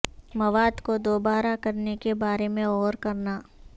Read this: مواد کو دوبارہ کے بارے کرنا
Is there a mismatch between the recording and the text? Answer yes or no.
yes